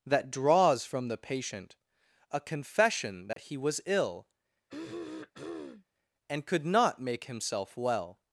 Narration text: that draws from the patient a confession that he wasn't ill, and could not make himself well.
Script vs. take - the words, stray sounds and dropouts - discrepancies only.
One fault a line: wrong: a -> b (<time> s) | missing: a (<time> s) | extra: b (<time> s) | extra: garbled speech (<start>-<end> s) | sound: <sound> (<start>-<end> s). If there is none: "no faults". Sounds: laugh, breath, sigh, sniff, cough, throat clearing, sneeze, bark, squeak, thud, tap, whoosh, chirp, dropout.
sound: dropout (3.3-3.4 s)
wrong: wasn't -> was (3.6 s)
sound: throat clearing (4.7-5.9 s)